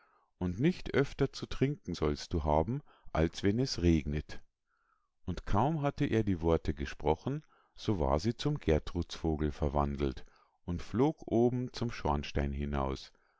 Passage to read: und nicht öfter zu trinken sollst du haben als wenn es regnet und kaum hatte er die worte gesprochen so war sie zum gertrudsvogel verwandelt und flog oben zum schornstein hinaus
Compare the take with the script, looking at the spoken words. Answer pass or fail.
pass